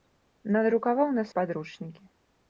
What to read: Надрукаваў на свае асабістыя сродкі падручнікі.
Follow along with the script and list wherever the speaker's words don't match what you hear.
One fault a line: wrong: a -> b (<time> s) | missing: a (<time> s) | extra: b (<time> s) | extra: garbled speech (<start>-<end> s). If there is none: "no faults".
missing: свае асабістыя сродкі (1.2 s)